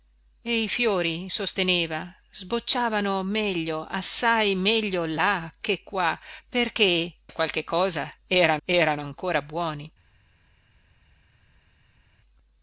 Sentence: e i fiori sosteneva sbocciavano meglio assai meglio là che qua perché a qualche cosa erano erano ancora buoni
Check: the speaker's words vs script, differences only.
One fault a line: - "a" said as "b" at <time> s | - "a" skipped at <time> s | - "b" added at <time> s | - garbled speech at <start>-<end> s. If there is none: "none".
none